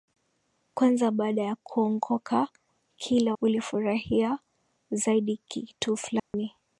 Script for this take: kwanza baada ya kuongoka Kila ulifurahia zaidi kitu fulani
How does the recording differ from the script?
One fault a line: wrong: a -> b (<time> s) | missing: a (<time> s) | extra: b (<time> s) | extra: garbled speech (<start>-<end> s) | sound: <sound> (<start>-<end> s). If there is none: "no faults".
sound: dropout (6.2-6.3 s)